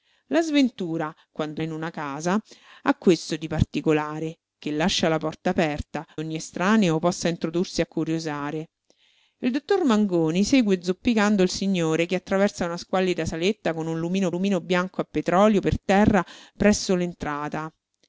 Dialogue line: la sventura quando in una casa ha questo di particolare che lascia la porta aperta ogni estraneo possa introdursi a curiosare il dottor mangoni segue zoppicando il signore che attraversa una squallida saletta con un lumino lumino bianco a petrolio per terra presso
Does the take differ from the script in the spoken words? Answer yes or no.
no